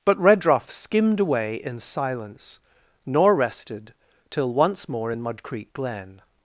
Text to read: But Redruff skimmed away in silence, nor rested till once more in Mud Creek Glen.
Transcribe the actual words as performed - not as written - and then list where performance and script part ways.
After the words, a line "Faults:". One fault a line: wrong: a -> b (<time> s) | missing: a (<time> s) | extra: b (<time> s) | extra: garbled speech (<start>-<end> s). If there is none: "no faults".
But Redruff skimmed away in silence, nor rested till once more in Mud Creek Glen.
Faults:
no faults